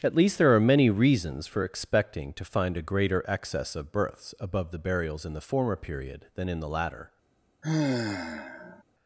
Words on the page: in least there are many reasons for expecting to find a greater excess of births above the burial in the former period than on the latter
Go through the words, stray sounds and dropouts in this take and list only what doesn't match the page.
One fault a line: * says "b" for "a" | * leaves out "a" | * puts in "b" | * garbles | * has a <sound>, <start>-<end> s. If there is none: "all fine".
* says "at" for "in"
* says "burials" for "burial"
* says "in" for "on"
* has a sigh, 7.6-8.8 s